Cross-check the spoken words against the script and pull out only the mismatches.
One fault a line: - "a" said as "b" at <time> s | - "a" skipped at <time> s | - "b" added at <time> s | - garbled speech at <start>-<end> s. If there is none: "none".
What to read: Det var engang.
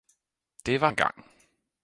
none